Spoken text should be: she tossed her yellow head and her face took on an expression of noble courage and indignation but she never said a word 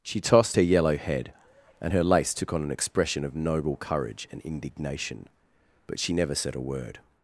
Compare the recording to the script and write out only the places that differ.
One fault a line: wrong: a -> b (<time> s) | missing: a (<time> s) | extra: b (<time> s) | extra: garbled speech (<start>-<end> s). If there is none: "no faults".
wrong: face -> lace (2.0 s)